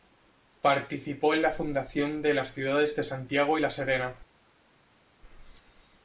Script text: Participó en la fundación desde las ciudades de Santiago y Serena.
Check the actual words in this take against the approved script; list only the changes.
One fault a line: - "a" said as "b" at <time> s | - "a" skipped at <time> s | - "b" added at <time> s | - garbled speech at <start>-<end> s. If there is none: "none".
- "desde" said as "de" at 2.2 s
- "La" added at 3.6 s